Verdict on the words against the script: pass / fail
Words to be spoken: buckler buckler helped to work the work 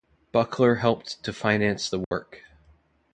fail